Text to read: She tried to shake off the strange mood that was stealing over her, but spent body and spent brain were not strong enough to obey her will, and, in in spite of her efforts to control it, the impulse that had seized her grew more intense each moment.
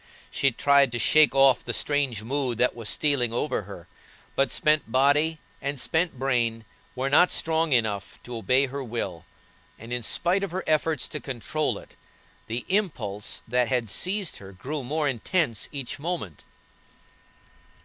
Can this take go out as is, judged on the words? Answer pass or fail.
fail